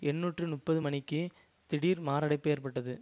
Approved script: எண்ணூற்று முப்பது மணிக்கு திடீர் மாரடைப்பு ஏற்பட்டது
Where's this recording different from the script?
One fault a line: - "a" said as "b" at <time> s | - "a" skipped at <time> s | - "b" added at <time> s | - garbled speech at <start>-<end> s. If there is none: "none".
none